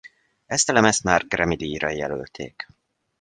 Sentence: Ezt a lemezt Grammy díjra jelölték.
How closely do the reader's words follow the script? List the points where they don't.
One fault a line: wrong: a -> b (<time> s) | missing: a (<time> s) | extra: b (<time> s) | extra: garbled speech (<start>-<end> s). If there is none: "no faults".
extra: már (1.0 s)